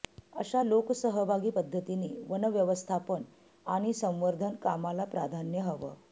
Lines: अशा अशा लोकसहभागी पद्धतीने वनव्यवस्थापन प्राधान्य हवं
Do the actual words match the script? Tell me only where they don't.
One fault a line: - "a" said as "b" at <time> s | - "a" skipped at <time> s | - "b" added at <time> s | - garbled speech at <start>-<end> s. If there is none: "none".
- "अशा" skipped at 0.6 s
- "आणि संवर्धन कामाला" added at 3.7 s